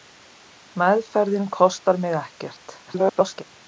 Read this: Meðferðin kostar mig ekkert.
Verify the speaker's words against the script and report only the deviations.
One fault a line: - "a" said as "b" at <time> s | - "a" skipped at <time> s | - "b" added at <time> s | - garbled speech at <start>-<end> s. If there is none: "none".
- garbled speech at 2.9-3.4 s